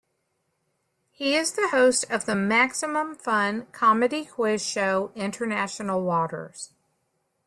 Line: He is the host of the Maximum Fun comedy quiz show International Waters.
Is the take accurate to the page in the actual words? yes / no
yes